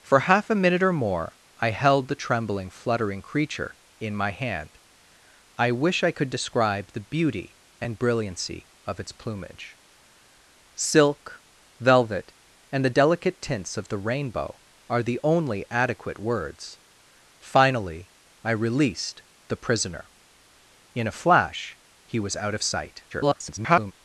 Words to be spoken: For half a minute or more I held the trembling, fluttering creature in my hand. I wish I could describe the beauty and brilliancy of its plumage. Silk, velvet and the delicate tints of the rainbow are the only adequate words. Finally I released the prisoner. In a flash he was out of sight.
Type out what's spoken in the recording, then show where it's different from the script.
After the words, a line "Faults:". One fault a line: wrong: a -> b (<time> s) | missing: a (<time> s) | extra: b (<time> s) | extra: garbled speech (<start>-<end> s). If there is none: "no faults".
For half a minute or more I held the trembling, fluttering creature in my hand. I wish I could describe the beauty and brilliancy of its plumage. Silk, velvet and the delicate tints of the rainbow are the only adequate words. Finally I released the prisoner. In a flash he was out of sight. [garbled]
Faults:
extra: garbled speech (23.1-23.9 s)